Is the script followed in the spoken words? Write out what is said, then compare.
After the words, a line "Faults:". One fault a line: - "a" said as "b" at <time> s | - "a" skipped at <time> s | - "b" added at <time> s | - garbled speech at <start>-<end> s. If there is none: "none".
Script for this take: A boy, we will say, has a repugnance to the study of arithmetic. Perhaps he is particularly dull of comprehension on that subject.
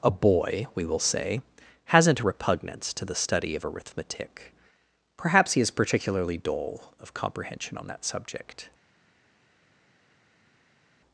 A boy, we will say, hasn't a repugnance to the study of arithmetic. Perhaps he is particularly dull of comprehension on that subject.
Faults:
- "has" said as "hasn't" at 1.9 s